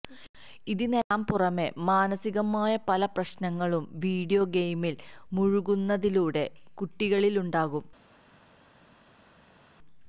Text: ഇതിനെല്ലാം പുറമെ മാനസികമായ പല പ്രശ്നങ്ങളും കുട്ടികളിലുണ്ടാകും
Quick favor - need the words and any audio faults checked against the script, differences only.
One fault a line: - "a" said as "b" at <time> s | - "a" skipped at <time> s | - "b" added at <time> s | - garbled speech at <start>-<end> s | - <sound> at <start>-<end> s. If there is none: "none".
- "വീഡിയോ ഗെയിമില് മുഴുകുന്നതിലൂടെ" added at 4.0 s